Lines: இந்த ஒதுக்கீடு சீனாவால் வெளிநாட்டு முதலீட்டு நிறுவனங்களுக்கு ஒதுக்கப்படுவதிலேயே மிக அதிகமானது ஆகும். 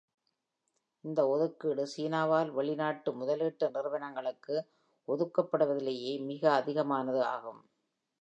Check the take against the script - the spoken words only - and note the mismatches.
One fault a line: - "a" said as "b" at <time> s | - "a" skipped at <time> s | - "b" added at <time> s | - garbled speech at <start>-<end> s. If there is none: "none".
none